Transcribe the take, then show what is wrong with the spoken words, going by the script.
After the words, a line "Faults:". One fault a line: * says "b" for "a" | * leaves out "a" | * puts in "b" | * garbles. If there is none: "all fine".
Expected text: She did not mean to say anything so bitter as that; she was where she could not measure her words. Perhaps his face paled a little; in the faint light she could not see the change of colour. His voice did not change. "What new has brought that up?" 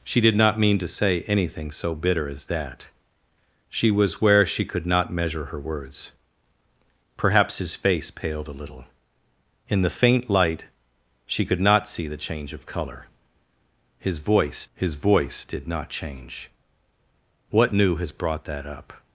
She did not mean to say anything so bitter as that; she was where she could not measure her words. Perhaps his face paled a little; in the faint light she could not see the change of colour. His voice his voice did not change. "What new has brought that up?"
Faults:
* puts in "his voice"